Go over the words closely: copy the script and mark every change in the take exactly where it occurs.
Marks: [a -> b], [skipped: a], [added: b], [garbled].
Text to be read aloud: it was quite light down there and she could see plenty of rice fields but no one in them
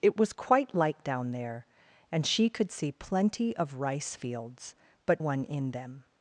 it was quite light down there and she could see plenty of rice fields but [skipped: no] one in them